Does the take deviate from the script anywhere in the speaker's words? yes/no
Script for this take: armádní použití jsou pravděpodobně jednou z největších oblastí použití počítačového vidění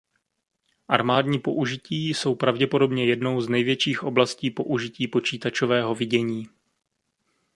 no